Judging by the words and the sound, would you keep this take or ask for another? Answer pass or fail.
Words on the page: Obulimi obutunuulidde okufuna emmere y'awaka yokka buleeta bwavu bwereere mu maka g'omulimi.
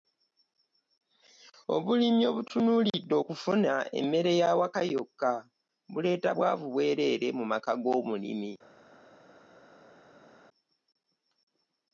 pass